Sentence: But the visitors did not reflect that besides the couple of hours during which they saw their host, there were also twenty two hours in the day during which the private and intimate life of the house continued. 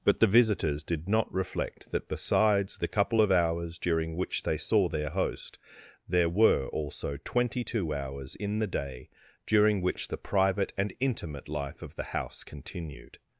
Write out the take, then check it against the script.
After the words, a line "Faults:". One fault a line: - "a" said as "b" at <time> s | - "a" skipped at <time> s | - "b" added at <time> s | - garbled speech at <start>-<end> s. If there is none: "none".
But the visitors did not reflect that besides the couple of hours during which they saw their host, there were also twenty two hours in the day during which the private and intimate life of the house continued.
Faults:
none